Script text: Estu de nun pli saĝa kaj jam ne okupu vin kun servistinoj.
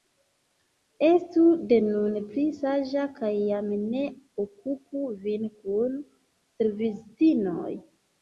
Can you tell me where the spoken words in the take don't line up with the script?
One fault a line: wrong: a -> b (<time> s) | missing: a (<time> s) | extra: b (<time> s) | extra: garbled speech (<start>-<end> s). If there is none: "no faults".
no faults